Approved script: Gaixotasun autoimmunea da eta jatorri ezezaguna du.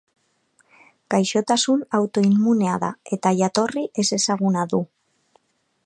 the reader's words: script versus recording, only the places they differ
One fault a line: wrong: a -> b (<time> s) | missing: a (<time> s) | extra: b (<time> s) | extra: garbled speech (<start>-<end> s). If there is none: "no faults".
no faults